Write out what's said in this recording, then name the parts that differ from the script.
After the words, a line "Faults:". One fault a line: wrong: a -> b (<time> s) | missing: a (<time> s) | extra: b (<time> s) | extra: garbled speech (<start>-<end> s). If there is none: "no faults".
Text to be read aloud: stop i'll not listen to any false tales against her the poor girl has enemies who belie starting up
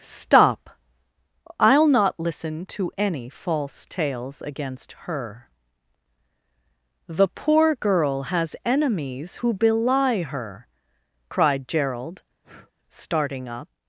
stop i'll not listen to any false tales against her the poor girl has enemies who belie her cried gerald starting up
Faults:
extra: her cried gerald (10.2 s)